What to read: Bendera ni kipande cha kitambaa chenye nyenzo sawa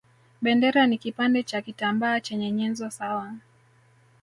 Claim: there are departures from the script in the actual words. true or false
false